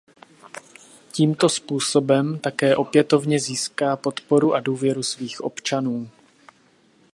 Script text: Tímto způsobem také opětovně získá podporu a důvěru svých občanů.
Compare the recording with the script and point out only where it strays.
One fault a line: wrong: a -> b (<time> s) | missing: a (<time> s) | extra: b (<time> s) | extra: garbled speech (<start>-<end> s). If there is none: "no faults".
no faults